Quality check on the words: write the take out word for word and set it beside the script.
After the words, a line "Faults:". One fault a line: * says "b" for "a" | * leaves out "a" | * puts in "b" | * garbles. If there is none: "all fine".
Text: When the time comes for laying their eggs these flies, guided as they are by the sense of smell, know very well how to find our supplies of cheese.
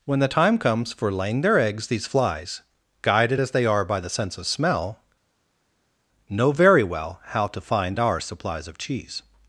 When the time comes for laying their eggs these flies, guided as they are by the sense of smell, know very well how to find our supplies of cheese.
Faults:
all fine